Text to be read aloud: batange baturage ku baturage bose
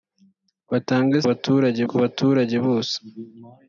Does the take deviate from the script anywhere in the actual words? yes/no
no